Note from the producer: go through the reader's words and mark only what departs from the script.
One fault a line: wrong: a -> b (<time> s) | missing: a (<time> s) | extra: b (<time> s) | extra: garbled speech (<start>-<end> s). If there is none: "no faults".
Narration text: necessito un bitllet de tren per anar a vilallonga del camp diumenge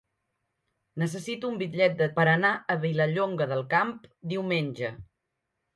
missing: tren (2.1 s)